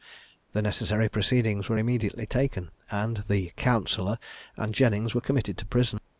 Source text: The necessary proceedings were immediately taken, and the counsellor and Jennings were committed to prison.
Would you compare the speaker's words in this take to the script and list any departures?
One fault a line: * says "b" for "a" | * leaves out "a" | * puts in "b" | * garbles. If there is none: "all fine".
all fine